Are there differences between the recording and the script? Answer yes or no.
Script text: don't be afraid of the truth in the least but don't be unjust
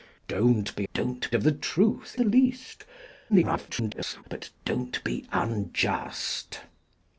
yes